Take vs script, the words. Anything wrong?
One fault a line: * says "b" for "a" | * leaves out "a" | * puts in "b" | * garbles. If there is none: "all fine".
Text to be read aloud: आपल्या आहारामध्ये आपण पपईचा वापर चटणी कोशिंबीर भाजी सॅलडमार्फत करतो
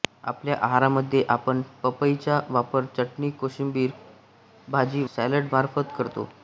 all fine